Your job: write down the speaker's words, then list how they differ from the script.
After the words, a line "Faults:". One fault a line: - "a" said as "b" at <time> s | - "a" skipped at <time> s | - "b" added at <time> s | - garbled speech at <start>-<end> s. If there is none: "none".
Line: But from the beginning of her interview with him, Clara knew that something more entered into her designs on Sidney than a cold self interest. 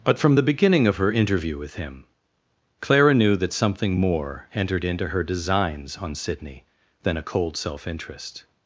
But from the beginning of her interview with him, Clara knew that something more entered into her designs on Sidney than a cold self interest.
Faults:
none